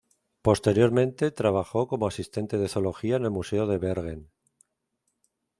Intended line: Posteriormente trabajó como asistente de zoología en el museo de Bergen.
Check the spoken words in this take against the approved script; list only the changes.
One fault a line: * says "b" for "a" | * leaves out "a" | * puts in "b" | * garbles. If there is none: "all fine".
all fine